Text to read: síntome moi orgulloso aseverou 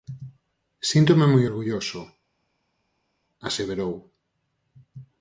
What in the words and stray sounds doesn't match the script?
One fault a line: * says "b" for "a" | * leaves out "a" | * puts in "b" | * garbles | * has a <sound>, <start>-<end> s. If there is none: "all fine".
all fine